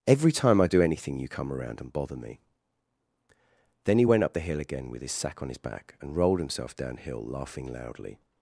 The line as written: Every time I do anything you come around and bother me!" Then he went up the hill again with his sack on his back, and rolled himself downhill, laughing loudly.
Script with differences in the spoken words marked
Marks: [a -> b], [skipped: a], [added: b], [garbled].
Every time I do anything you come around and bother me!" Then he went up the hill again with his sack on his back, and rolled himself downhill, laughing loudly.